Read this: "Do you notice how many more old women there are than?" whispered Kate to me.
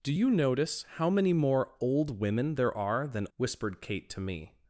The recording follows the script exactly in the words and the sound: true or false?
true